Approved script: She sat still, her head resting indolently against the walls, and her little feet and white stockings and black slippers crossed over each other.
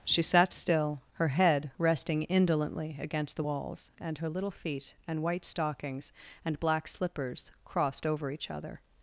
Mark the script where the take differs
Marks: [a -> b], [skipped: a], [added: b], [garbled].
She sat still, her head resting indolently against the walls, and her little feet and white stockings and black slippers crossed over each other.